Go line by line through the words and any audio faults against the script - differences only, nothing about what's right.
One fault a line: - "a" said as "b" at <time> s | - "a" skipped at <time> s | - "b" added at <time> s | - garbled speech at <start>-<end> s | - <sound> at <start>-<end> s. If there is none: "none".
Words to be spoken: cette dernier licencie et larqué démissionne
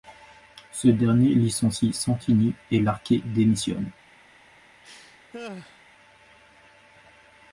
- "cette" said as "ce" at 0.7 s
- "santini" added at 1.9 s
- laugh at 4.8-5.8 s